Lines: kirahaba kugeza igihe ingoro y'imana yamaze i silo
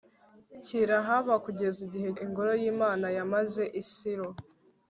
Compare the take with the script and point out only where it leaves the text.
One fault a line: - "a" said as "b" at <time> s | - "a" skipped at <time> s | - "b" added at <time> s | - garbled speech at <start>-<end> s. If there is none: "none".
none